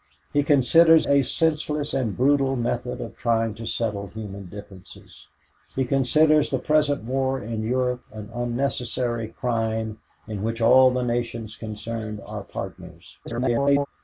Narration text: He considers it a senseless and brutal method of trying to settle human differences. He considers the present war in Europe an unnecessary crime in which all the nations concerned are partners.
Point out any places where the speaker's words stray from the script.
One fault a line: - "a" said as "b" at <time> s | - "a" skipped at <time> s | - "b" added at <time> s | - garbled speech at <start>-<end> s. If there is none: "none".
- "it" skipped at 1.1 s
- garbled speech at 13.2-13.9 s